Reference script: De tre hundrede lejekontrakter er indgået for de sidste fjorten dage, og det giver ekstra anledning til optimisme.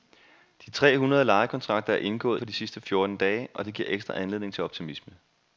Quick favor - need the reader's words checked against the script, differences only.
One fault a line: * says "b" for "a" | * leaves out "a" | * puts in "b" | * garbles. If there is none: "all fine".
all fine